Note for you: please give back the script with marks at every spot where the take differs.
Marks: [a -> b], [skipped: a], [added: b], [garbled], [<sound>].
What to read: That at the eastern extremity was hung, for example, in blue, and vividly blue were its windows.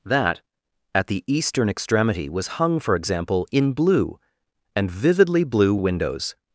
That at the eastern extremity was hung, for example, in blue, and vividly blue [skipped: were its] windows.